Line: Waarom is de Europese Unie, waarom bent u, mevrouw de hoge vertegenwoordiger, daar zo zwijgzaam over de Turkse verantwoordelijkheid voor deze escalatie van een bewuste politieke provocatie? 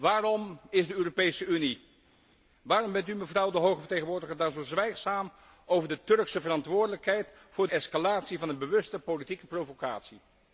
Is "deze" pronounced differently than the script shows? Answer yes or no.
yes